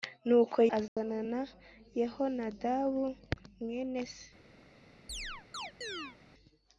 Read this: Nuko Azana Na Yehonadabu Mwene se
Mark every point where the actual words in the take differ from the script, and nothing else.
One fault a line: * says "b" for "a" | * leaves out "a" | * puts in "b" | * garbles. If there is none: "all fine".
all fine